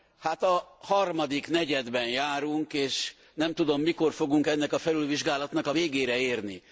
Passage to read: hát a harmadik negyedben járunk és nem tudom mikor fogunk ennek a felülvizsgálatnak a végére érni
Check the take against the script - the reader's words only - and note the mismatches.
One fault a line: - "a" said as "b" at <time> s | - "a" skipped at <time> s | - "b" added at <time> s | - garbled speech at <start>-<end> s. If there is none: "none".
none